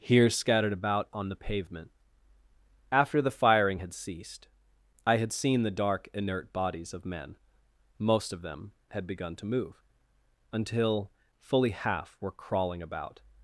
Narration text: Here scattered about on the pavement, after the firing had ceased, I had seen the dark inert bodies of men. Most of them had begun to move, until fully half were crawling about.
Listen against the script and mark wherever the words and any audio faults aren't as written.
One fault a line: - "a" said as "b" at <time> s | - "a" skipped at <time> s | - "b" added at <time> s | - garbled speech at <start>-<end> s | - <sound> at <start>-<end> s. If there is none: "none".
none